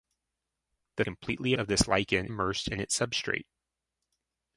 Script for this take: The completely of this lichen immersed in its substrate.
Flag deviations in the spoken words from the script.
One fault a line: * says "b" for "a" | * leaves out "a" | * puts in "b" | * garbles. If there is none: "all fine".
all fine